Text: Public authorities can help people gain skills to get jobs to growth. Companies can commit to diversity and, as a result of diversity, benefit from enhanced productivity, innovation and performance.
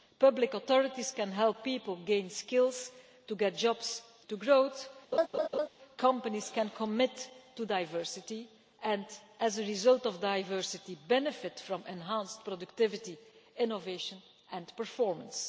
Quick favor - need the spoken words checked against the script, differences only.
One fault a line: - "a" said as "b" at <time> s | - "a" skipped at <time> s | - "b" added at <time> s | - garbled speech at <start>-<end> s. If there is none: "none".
none